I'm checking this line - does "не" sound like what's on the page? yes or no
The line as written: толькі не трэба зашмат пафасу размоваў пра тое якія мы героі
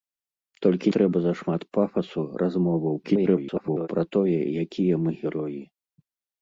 no